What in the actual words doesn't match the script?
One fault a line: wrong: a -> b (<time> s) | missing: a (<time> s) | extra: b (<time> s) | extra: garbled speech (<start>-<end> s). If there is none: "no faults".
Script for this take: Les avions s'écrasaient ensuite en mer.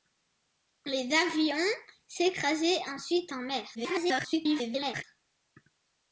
extra: garbled speech (3.7-5.0 s)